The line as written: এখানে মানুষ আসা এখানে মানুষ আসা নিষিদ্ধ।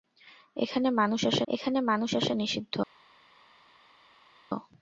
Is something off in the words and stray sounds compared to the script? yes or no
no